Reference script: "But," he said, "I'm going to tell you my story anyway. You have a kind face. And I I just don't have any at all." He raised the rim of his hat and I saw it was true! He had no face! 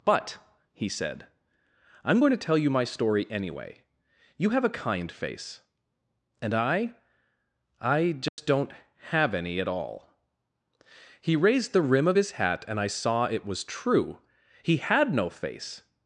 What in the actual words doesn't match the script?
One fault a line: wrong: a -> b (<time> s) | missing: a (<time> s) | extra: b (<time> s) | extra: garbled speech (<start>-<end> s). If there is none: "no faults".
no faults